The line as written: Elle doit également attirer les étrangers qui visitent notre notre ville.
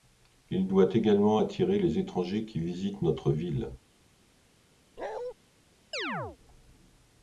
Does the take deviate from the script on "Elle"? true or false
true